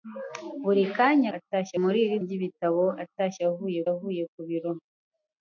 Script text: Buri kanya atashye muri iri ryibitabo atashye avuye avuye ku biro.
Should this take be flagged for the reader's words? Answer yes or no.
no